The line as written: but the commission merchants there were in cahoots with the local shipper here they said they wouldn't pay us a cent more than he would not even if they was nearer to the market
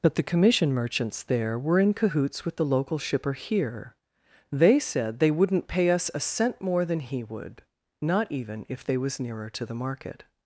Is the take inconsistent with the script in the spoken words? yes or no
no